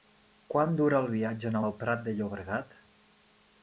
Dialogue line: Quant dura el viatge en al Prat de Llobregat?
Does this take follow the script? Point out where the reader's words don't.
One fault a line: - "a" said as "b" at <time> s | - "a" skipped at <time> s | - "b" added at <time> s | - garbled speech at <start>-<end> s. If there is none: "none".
none